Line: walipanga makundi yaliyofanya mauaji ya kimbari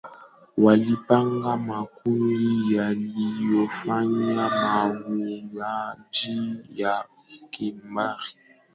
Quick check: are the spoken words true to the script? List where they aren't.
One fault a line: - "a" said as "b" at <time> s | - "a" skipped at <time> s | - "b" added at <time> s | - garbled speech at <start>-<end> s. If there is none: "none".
none